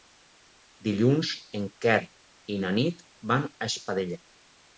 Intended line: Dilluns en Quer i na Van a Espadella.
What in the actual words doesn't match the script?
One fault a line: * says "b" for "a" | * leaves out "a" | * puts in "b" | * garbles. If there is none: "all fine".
* puts in "Nit"